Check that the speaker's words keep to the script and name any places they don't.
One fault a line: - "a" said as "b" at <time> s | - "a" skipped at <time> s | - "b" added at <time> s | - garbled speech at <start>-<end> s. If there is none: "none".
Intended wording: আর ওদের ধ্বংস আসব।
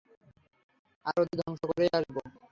- "করেই" added at 1.7 s